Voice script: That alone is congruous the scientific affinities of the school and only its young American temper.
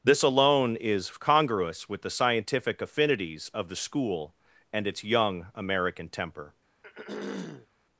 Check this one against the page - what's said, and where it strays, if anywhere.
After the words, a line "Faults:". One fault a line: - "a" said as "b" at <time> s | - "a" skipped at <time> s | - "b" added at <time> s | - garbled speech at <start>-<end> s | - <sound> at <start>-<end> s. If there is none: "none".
This alone is congruous with the scientific affinities of the school and its young American temper.
Faults:
- "That" said as "This" at 0.0 s
- "with" added at 1.9 s
- "only" skipped at 4.9 s
- throat clearing at 6.8-7.7 s